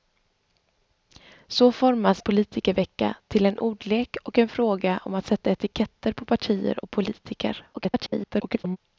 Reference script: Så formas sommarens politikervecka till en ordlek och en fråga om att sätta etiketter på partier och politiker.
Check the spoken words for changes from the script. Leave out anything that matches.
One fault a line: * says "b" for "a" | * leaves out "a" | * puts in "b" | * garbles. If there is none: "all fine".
* leaves out "sommarens"
* garbles